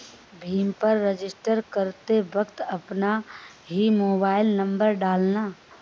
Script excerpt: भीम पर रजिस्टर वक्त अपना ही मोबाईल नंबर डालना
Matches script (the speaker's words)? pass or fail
fail